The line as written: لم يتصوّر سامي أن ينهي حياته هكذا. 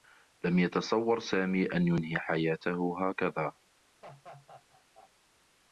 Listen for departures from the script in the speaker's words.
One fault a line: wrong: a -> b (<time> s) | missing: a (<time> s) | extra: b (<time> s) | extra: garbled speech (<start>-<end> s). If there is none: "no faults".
no faults